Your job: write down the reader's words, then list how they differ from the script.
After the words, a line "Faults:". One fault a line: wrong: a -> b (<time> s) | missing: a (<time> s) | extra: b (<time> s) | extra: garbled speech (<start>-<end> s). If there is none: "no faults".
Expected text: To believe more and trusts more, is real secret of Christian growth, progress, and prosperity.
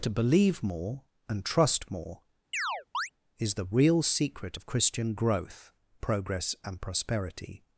To believe more and trust more, is the real secret of Christian growth, progress, and prosperity.
Faults:
wrong: trusts -> trust (1.4 s)
extra: the (3.6 s)